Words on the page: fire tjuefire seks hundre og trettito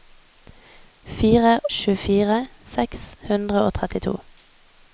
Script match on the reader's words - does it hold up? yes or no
yes